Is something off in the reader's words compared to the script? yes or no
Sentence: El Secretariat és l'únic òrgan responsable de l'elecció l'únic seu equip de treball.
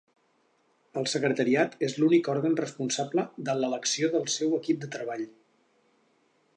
yes